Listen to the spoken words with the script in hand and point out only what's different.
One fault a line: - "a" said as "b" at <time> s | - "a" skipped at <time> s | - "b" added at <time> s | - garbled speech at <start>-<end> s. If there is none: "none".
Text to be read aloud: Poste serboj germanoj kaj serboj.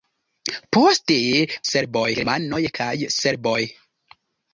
none